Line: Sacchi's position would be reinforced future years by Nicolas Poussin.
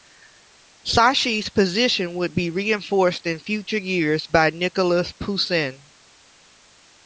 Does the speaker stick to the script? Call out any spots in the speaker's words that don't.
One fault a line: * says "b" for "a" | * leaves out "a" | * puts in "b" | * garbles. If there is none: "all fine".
* puts in "in"